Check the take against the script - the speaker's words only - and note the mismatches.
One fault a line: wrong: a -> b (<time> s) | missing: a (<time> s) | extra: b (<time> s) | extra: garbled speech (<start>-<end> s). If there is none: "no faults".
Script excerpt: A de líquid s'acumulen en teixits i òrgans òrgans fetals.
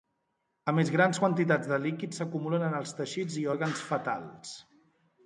extra: més grans quantitats (0.8 s)
extra: els (2.8 s)
missing: òrgans (3.9 s)